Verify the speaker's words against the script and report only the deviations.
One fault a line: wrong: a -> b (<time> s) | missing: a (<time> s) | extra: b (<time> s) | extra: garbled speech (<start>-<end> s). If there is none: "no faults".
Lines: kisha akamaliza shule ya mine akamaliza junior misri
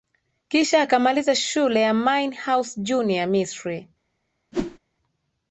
wrong: akamaliza -> house (2.4 s)